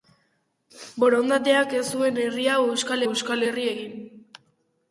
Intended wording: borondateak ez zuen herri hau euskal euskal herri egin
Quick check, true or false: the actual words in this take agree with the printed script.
true